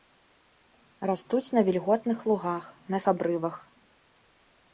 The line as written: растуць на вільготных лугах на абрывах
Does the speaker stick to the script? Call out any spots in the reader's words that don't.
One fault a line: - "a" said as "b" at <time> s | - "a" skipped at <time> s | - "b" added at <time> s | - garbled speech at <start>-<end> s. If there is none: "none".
none